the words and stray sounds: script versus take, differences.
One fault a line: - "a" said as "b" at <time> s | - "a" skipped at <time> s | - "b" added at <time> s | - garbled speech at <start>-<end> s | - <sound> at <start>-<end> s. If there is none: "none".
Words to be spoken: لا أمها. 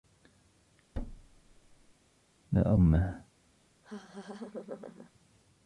- thud at 0.9-1.9 s
- laugh at 3.8-5.1 s